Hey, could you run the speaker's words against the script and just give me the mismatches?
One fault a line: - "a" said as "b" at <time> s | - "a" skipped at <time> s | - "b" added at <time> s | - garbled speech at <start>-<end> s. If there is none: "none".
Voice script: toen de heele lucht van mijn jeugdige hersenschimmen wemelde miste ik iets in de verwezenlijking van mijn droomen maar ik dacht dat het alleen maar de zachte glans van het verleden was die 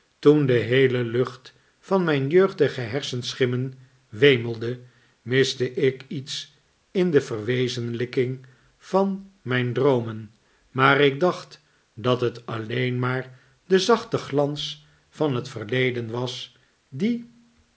none